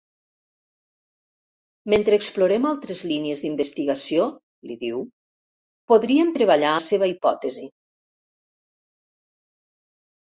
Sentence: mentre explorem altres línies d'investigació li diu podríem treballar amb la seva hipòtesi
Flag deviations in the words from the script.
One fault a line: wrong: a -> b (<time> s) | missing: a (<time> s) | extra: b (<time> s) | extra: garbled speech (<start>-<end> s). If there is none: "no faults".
missing: amb (6.7 s)